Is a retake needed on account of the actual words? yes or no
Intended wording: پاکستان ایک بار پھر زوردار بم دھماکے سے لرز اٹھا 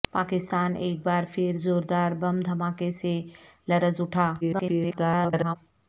yes